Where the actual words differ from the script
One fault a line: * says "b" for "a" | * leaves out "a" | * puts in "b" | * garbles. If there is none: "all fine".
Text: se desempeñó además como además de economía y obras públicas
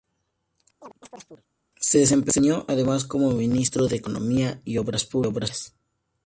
* says "ministro" for "además"